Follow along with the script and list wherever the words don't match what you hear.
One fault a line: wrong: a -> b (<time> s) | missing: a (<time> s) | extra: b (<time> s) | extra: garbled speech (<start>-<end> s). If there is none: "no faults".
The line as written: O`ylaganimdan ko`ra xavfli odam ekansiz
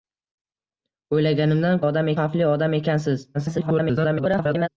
wrong: ko`ra -> odam (1.9 s)
extra: garbled speech (3.3-4.7 s)